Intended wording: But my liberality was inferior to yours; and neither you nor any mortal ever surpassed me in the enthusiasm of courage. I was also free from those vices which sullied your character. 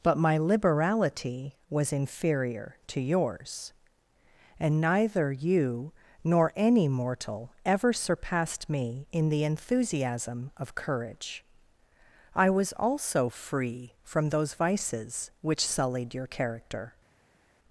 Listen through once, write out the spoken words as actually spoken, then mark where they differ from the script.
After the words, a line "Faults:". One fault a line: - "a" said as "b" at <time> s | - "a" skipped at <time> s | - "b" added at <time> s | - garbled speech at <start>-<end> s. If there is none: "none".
But my liberality was inferior to yours; and neither you nor any mortal ever surpassed me in the enthusiasm of courage. I was also free from those vices which sullied your character.
Faults:
none